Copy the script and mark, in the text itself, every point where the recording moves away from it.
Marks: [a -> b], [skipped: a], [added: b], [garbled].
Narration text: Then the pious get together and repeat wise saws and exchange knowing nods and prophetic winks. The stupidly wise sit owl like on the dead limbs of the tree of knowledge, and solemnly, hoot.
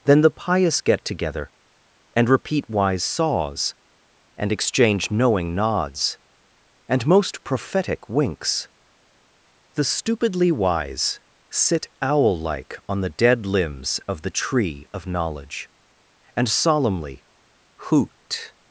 Then the pious get together and repeat wise saws and exchange knowing nods and [added: most] prophetic winks. The stupidly wise sit owl like on the dead limbs of the tree of knowledge, and solemnly, hoot.